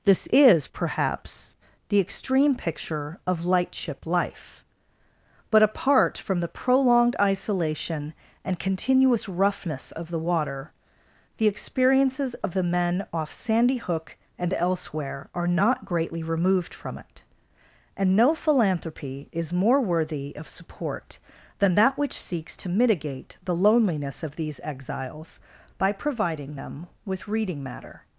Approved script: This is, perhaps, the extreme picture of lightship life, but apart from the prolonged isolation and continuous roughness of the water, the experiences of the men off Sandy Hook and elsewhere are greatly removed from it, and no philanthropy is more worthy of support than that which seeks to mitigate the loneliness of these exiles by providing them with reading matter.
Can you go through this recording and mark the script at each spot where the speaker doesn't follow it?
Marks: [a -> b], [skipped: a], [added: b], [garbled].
This is, perhaps, the extreme picture of lightship life, but apart from the prolonged isolation and continuous roughness of the water, the experiences of the men off Sandy Hook and elsewhere are [added: not] greatly removed from it, and no philanthropy is more worthy of support than that which seeks to mitigate the loneliness of these exiles by providing them with reading matter.